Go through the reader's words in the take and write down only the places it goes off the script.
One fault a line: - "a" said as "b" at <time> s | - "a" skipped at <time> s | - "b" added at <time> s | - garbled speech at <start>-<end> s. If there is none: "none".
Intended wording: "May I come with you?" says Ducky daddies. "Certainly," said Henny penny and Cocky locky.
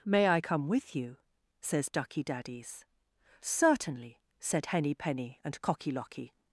none